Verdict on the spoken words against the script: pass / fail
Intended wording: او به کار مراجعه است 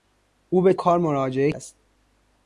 pass